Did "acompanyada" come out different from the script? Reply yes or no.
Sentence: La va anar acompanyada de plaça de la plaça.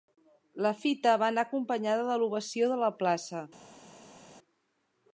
no